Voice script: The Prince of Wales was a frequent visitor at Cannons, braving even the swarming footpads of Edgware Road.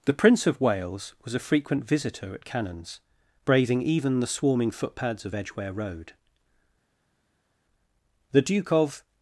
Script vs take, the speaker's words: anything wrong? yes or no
yes